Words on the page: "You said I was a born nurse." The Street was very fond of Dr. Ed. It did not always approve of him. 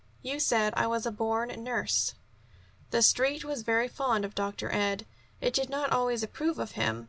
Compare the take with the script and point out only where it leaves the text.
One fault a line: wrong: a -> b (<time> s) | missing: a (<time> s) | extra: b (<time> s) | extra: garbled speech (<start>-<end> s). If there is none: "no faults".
no faults